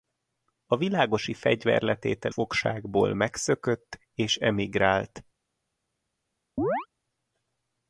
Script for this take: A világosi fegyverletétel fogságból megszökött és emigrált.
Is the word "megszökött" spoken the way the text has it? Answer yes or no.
yes